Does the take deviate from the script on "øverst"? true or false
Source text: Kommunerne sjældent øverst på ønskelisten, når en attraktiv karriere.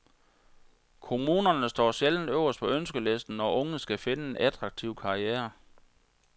false